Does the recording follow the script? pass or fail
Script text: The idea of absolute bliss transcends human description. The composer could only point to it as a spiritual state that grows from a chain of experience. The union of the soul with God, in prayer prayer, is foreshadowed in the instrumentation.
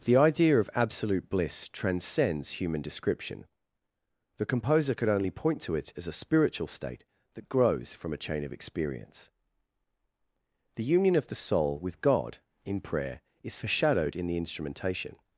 fail